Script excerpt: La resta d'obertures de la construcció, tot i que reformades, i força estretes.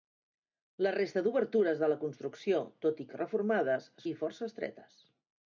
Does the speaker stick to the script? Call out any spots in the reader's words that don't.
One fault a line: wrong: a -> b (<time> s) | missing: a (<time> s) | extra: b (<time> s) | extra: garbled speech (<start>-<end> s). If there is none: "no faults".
no faults